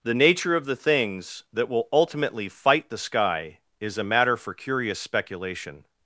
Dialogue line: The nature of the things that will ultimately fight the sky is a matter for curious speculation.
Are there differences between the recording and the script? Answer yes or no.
no